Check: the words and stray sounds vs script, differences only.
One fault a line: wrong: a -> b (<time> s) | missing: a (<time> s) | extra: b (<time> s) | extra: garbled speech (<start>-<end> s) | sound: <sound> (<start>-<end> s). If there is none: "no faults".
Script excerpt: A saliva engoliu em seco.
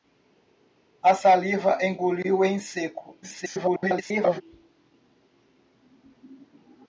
extra: garbled speech (3.2-4.4 s)